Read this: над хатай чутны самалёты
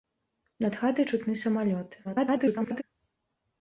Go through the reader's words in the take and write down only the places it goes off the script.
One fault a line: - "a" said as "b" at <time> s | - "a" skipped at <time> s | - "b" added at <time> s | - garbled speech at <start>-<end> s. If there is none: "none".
- garbled speech at 2.0-2.8 s